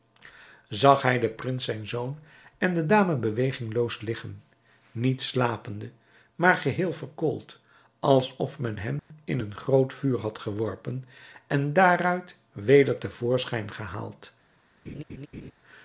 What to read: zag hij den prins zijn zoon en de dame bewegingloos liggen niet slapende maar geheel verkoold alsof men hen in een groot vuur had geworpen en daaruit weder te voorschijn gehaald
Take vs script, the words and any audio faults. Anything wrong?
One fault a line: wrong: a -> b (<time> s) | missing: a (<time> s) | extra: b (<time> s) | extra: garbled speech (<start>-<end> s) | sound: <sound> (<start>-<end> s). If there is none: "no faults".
sound: dropout (9.0-9.1 s)
sound: laugh (14.8-15.5 s)